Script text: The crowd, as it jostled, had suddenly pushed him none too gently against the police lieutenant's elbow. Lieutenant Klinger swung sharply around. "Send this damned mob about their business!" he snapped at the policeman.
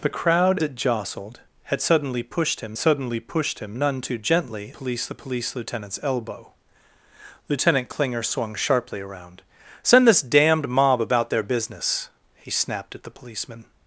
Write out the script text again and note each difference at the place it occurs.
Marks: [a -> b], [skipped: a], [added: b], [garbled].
The crowd, [skipped: as] it jostled, had suddenly pushed him [added: suddenly pushed him] none too gently [against -> police] the police lieutenant's elbow. Lieutenant Klinger swung sharply around. "Send this damned mob about their business!" he snapped at the policeman.